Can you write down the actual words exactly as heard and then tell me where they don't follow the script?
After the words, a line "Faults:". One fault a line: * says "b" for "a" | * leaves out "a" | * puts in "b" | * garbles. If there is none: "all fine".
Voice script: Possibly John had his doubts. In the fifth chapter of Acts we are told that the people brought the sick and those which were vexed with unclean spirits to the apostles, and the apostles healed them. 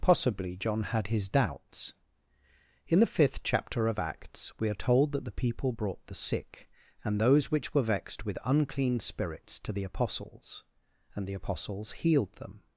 Possibly John had his doubts. In the fifth chapter of Acts we are told that the people brought the sick and those which were vexed with unclean spirits to the apostles, and the apostles healed them.
Faults:
all fine